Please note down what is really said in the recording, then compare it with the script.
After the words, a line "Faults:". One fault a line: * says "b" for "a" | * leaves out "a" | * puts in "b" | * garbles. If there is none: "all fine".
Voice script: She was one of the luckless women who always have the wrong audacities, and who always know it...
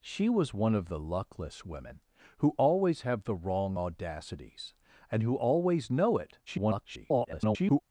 She was one of the luckless women who always have the wrong audacities, and who always know it... [garbled]
Faults:
* garbles